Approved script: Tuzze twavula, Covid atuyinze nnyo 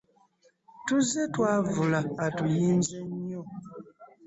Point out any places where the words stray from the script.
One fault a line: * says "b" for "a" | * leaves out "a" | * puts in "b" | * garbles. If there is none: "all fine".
* leaves out "Covid"